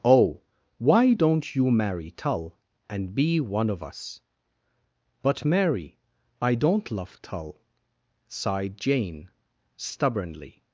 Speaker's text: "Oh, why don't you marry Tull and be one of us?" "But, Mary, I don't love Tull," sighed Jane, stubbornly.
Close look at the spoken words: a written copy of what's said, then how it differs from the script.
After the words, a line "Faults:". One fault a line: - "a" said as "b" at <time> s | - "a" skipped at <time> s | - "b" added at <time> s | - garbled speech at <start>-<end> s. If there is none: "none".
"Oh, why don't you marry Tull and be one of us?" "But, Mary, I don't love Tull," sighed Jane, stubbornly.
Faults:
none